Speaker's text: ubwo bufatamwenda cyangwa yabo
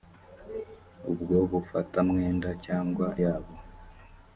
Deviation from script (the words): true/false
false